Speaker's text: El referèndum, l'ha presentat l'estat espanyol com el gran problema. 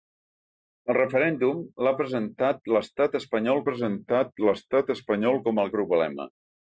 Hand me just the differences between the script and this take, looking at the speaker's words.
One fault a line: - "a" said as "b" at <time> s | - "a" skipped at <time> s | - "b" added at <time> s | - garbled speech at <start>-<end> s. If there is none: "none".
- "presentat l'estat espanyol" added at 3.7 s
- "gran" skipped at 5.7 s